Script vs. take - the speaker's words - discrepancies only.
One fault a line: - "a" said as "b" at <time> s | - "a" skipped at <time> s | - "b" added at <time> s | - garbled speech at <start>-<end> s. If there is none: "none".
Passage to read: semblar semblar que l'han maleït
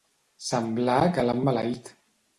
- "semblar" skipped at 0.9 s